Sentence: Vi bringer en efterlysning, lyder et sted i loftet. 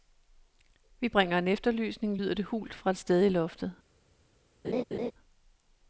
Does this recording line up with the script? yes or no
no